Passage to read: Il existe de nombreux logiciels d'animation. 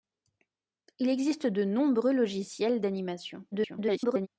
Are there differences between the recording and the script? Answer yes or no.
yes